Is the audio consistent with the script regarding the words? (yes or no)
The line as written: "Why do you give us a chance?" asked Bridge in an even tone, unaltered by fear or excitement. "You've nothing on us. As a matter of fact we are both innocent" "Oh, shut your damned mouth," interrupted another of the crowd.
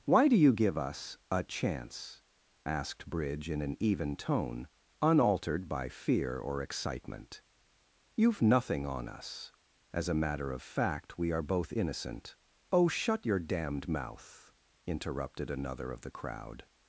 yes